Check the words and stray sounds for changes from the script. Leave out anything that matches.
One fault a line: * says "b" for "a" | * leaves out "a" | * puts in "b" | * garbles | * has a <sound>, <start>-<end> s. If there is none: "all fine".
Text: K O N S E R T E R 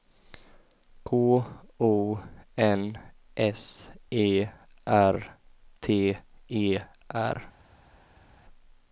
all fine